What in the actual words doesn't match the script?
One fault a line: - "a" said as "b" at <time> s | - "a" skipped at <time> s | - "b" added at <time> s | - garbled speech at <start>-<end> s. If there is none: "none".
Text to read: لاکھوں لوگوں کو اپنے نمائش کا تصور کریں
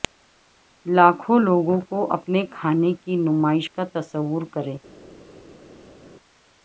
- "کھانے کی" added at 2.5 s